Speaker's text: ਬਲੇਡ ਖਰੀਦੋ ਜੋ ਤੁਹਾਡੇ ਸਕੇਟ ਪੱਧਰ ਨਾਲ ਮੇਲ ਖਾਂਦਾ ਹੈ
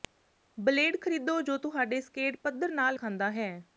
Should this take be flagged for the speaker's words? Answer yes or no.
yes